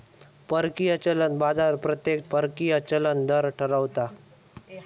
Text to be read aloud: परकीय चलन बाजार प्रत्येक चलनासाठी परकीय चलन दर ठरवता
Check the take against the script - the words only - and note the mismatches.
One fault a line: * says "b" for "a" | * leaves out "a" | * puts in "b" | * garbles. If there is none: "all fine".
* leaves out "चलनासाठी"